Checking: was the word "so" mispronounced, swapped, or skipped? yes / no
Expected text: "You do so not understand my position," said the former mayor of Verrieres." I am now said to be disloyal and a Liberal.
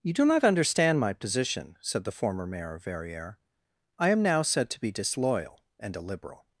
yes